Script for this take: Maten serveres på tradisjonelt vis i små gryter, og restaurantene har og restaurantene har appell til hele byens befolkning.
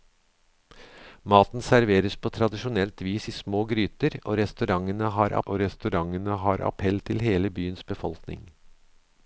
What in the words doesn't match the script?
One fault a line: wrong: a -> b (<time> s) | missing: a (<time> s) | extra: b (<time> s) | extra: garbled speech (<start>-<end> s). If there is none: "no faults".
no faults